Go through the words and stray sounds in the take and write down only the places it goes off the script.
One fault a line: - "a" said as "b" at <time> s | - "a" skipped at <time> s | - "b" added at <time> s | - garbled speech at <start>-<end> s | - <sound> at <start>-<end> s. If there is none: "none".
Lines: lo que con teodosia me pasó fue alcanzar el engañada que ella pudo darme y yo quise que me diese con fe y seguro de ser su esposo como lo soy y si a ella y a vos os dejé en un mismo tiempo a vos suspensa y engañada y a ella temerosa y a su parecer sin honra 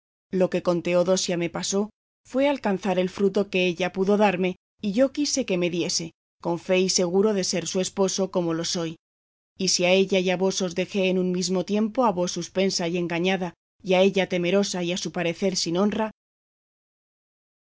- "engañada" said as "fruto" at 3.1 s